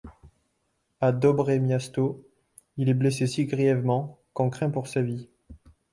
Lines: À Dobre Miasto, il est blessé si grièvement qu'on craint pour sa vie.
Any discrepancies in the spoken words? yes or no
no